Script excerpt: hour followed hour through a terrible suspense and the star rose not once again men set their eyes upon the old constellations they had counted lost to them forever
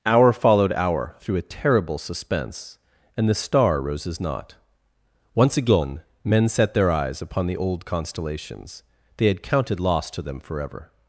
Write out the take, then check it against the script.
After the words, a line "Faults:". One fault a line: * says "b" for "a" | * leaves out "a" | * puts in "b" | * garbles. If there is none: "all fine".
hour followed hour through a terrible suspense and the star roses not once again men set their eyes upon the old constellations they had counted lost to them forever
Faults:
* says "roses" for "rose"